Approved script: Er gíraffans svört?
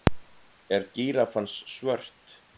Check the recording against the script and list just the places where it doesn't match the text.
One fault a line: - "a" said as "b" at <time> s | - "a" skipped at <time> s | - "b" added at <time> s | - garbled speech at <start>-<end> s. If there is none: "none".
none